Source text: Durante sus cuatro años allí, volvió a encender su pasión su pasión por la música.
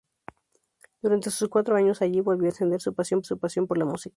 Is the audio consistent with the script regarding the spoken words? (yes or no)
yes